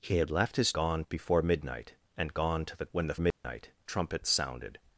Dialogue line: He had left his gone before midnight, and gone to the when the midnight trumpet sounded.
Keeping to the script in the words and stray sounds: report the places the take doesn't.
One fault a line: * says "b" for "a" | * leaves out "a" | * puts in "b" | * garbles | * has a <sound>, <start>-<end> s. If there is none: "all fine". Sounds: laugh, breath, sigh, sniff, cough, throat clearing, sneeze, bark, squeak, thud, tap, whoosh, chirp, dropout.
* has a dropout, 3.3-3.4 s